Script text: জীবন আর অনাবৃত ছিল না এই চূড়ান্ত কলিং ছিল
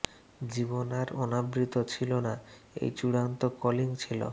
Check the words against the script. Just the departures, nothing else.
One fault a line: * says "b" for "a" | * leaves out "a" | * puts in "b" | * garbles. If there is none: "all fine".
all fine